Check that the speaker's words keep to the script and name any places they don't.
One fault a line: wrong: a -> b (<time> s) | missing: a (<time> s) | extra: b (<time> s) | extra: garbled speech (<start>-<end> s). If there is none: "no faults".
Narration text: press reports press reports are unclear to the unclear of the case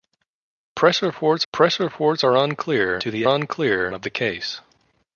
no faults